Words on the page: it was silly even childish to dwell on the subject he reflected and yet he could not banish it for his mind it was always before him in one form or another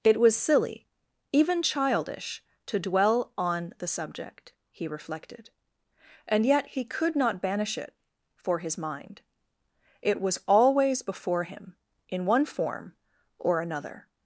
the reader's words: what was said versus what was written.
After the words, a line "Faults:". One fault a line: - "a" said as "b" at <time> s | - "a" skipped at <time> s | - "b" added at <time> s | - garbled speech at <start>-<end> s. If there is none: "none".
it was silly even childish to dwell on the subject he reflected and yet he could not banish it for his mind it was always before him in one form or another
Faults:
none